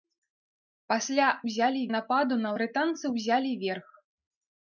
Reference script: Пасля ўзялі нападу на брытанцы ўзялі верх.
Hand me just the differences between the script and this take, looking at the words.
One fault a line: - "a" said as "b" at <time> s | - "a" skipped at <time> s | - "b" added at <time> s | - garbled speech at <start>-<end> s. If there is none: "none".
none